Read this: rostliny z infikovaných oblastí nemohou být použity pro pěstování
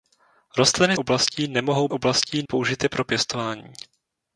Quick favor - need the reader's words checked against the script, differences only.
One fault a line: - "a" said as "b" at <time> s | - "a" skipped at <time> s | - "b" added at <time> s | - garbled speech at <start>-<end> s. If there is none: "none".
- "z infikovaných" skipped at 1.0 s
- "být" said as "oblastí" at 1.9 s